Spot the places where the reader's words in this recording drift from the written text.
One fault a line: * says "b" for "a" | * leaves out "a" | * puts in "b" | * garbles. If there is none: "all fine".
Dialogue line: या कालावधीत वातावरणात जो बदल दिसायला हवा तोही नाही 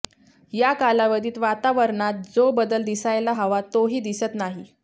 * puts in "दिसत"